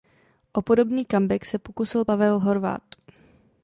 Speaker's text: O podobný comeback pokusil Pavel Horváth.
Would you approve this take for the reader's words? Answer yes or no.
no